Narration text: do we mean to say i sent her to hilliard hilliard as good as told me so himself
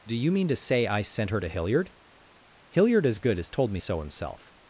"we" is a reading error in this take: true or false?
true